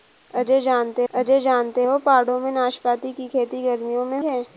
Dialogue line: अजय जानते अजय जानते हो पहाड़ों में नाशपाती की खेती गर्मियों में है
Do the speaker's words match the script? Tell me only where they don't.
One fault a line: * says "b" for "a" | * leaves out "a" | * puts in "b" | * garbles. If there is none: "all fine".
all fine